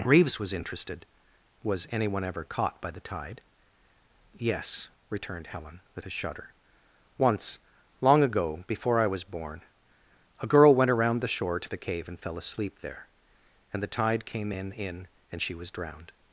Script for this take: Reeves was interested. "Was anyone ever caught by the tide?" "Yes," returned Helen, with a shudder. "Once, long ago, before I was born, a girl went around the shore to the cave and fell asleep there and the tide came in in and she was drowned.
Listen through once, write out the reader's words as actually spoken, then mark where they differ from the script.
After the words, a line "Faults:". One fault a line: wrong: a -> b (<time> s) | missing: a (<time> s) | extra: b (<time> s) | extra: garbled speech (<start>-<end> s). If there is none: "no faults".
Reeves was interested. "Was anyone ever caught by the tide?" "Yes," returned Helen, with a shudder. "Once, long ago, before I was born, a girl went around the shore to the cave and fell asleep there and the tide came in in and she was drowned.
Faults:
no faults